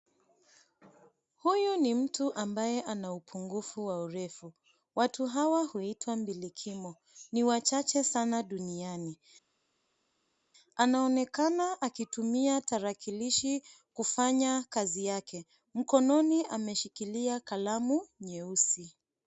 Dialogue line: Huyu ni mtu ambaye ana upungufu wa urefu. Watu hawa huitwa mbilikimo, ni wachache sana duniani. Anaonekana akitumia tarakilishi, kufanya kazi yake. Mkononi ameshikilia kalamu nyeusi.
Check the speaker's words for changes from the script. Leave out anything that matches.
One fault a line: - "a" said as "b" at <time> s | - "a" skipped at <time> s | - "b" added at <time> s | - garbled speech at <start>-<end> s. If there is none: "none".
none